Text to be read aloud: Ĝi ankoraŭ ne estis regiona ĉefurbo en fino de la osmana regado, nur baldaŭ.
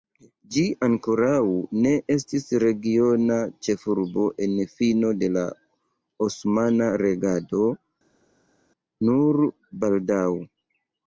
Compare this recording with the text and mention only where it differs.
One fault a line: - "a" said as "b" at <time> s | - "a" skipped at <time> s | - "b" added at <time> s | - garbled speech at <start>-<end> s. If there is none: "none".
none